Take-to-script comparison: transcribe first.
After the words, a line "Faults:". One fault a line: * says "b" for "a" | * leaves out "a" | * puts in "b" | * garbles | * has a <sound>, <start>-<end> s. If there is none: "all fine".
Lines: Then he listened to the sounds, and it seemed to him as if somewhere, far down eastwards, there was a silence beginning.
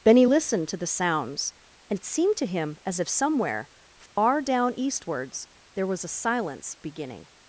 Benny listened to the sounds, and it seemed to him as if somewhere, far down eastwards, there was a silence beginning.
Faults:
* says "Benny" for "Then he"
* has a dropout, 4.1-4.2 s